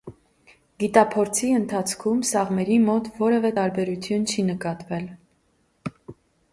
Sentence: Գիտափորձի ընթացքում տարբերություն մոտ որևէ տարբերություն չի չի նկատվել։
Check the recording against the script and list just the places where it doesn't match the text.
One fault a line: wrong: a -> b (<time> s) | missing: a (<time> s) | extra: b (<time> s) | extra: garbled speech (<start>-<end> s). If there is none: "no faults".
wrong: տարբերություն -> սաղմերի (2.3 s)
missing: չի (4.5 s)